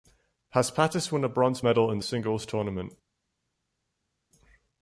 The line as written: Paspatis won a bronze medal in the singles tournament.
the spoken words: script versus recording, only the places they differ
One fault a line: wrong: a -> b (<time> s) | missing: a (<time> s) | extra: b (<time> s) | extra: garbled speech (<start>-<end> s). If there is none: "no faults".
no faults